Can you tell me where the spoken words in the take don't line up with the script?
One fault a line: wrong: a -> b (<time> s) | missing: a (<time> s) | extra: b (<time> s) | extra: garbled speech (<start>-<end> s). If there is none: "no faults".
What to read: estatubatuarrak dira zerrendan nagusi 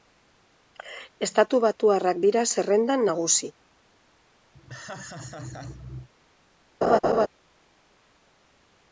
no faults